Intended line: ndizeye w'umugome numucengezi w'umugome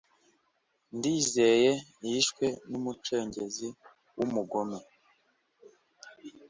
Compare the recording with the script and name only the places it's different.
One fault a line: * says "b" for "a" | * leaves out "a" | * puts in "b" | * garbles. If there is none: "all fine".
* says "yishwe" for "w'umugome"